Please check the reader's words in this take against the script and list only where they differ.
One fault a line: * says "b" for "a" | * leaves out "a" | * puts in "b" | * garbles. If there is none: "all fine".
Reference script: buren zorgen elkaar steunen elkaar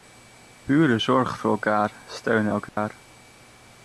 * puts in "voor"